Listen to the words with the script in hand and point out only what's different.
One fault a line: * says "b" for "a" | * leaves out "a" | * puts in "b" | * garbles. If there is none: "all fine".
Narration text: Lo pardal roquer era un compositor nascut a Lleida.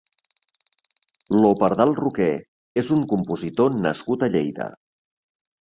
* says "és" for "era"